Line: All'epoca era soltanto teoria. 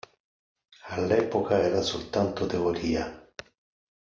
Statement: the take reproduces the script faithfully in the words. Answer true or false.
true